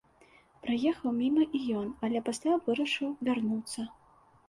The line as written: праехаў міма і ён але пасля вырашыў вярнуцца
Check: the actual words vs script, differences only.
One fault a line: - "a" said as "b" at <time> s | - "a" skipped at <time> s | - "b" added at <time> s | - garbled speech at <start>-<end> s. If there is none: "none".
none